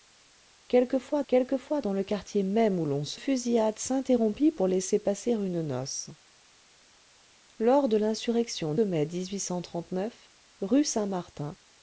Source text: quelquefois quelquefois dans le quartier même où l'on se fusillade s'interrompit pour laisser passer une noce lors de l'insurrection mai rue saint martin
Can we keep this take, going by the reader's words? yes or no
yes